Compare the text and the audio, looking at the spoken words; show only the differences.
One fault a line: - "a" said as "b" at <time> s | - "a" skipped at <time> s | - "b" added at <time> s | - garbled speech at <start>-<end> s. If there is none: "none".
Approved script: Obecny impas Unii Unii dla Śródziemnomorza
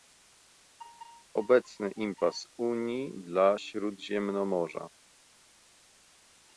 - "Unii" skipped at 3.1 s